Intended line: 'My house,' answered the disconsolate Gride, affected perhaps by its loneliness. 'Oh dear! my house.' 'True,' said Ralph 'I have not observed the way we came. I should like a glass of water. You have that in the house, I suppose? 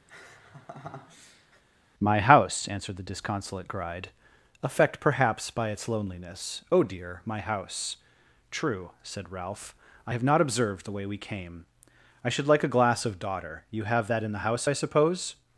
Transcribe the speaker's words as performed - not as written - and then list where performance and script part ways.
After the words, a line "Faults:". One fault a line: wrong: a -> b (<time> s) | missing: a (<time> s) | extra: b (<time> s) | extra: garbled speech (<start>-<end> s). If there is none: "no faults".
'My house,' answered the disconsolate Gride, affect perhaps by its loneliness. 'Oh dear! my house.' 'True,' said Ralph 'I have not observed the way we came. I should like a glass of daughter. You have that in the house, I suppose?
Faults:
wrong: affected -> affect (4.6 s)
wrong: water -> daughter (13.2 s)